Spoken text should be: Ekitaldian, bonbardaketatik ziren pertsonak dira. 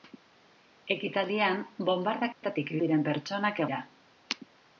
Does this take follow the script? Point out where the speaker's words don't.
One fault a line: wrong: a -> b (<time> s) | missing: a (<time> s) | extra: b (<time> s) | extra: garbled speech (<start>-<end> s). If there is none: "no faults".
no faults